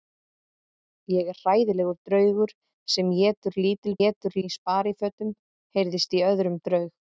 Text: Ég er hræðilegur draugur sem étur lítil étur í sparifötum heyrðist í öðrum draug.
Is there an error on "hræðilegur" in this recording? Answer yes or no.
no